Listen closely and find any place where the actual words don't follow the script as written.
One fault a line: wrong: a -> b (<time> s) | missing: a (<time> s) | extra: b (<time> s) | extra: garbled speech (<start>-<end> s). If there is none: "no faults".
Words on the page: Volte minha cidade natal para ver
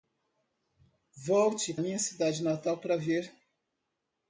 no faults